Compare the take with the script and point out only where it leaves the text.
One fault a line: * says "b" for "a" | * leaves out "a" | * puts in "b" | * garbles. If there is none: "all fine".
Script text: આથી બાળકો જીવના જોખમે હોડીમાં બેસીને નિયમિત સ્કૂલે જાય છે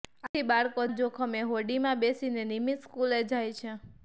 * leaves out "જીવના"